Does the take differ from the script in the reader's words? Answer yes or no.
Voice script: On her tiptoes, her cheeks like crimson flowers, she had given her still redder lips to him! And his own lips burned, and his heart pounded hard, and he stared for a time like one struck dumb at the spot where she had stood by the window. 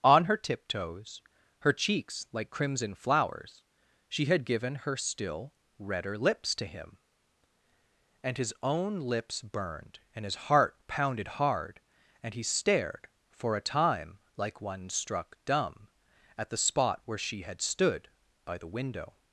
no